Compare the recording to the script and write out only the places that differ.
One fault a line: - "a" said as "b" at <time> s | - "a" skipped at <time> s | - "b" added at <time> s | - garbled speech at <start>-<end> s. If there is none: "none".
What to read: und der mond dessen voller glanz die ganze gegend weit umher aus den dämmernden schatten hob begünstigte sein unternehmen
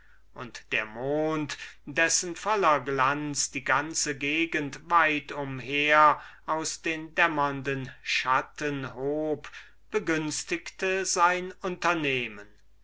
none